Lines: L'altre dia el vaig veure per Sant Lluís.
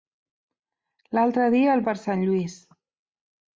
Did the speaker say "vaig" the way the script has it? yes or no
no